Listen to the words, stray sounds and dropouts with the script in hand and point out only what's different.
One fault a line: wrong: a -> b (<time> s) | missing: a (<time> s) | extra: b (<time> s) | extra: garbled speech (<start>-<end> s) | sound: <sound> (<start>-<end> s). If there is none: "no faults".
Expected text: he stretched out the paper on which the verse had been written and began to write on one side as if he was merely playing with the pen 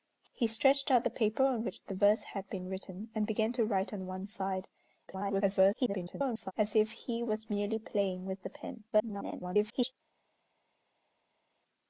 extra: garbled speech (5.1-6.5 s)
extra: garbled speech (8.9-9.9 s)